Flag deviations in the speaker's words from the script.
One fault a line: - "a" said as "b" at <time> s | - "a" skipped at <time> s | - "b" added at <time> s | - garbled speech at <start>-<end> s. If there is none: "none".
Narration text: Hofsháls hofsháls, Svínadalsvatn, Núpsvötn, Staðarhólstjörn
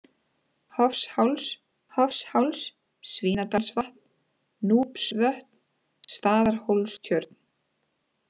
none